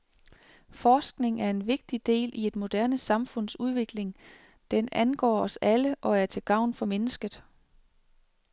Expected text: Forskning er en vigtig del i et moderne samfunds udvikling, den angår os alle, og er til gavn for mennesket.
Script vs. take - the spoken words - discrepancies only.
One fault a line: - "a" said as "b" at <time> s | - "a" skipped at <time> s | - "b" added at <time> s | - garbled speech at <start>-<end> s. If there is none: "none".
none